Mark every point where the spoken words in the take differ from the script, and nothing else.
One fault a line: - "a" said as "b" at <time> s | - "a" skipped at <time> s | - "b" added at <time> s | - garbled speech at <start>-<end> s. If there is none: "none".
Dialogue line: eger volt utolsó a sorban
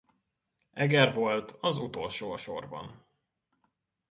- "az" added at 1.5 s